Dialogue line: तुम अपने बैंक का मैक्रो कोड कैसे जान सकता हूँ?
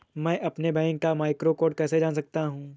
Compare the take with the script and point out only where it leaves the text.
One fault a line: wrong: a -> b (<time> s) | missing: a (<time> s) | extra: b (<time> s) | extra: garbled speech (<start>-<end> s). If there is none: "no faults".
wrong: तुम -> मैं (0.2 s)